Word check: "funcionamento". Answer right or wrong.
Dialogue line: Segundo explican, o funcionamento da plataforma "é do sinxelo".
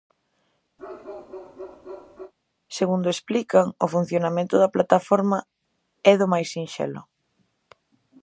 right